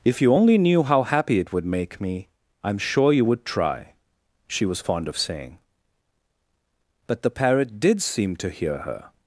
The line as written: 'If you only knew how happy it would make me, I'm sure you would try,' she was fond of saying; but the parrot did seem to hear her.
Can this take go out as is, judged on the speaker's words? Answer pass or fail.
pass